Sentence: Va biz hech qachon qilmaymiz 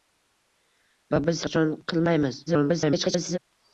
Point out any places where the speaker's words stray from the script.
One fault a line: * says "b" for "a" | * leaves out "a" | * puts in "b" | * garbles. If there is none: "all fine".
* leaves out "hech"
* garbles